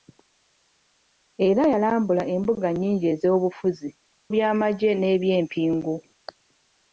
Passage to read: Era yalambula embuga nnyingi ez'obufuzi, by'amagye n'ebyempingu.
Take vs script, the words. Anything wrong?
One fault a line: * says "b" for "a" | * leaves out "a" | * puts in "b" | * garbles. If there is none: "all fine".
all fine